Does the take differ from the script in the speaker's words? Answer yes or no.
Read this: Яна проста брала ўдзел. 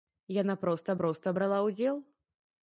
yes